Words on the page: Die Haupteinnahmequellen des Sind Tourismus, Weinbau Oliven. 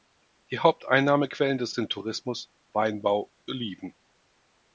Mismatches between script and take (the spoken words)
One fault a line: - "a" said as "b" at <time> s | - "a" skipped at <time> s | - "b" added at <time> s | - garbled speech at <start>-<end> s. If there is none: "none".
none